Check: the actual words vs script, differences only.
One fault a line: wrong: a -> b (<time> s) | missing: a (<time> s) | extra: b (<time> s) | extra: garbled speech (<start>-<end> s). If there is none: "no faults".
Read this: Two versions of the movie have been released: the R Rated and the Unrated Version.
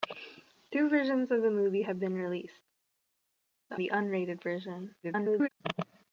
missing: R Rated and (3.8 s)
extra: garbled speech (5.0-5.5 s)